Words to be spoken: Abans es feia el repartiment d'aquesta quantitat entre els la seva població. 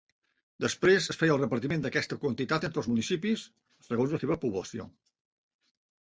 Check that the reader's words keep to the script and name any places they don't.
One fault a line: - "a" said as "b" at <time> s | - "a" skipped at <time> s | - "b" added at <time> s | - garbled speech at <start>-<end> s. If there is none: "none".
- "Abans" said as "Després" at 0.6 s
- "municipis segons" added at 2.9 s